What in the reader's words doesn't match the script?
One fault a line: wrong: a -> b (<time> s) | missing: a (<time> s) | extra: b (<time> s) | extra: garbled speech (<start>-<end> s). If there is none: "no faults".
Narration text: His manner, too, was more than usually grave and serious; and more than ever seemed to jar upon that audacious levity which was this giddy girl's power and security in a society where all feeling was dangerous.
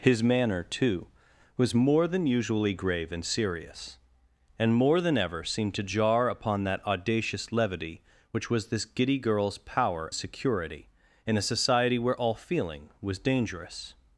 missing: and (10.1 s)